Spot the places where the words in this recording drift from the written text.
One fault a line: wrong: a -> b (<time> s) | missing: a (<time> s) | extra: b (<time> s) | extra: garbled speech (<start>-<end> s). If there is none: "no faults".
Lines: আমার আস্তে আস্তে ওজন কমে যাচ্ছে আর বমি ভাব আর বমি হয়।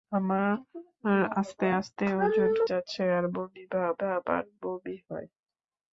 missing: কমে (2.5 s)
extra: ভাব (4.0 s)